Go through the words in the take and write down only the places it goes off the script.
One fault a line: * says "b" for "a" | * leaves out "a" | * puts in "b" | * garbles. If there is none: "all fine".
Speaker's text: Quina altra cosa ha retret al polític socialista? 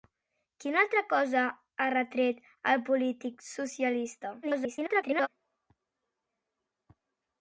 * garbles